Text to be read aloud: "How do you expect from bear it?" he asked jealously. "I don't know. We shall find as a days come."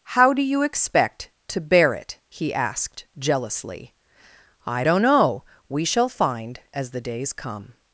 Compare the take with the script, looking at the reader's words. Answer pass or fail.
fail